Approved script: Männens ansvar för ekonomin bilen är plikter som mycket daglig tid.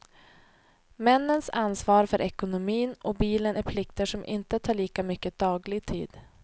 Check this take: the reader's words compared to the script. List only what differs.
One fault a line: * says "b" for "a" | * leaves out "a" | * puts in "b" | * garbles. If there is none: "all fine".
* puts in "och"
* puts in "inte tar lika"